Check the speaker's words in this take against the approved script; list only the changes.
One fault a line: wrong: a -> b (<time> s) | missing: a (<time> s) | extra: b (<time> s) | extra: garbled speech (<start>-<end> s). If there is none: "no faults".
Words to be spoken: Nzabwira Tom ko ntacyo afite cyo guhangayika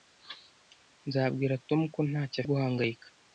missing: afite cyo (2.4 s)